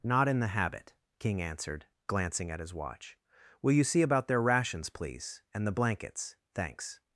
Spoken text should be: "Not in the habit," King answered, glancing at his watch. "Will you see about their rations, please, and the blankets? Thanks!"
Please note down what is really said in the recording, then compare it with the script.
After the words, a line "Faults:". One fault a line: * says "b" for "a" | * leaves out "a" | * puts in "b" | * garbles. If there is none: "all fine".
"Not in the habit," King answered, glancing at his watch. "Will you see about their rations, please, and the blankets? Thanks!"
Faults:
all fine